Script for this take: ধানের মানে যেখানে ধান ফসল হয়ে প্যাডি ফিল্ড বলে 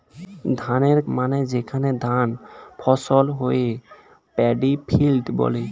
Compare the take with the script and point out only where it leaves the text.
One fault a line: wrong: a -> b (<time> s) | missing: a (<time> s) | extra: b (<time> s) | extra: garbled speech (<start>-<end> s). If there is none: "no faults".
no faults